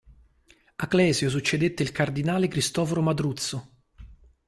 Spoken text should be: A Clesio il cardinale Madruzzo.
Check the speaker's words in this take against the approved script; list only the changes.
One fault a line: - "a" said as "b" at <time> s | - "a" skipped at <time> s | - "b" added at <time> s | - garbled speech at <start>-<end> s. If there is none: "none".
- "succedette" added at 1.3 s
- "Cristoforo" added at 2.5 s